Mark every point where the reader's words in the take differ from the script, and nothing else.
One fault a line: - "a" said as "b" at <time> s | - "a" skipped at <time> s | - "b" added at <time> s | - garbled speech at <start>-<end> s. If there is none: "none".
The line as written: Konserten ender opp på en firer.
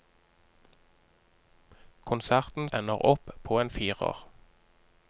none